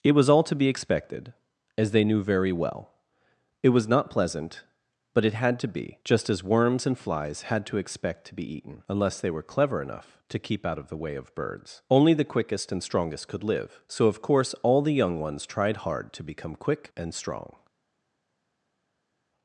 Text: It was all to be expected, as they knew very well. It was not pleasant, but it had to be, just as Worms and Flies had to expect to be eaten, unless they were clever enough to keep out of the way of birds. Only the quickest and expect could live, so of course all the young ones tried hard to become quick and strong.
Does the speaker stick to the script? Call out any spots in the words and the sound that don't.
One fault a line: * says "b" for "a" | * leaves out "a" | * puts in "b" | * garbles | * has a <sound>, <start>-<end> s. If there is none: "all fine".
* says "strongest" for "expect"